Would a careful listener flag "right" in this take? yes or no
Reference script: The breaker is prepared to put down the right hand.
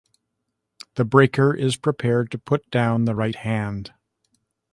no